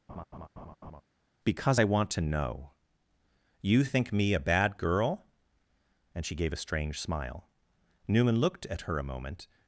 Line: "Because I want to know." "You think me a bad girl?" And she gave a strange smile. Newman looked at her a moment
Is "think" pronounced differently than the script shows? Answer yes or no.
no